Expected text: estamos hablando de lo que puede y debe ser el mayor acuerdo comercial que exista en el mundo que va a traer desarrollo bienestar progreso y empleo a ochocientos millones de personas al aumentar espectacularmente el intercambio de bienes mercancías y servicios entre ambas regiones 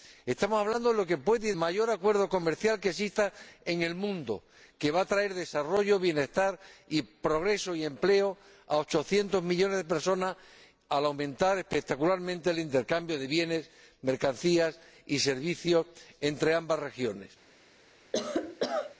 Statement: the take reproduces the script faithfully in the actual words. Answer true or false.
false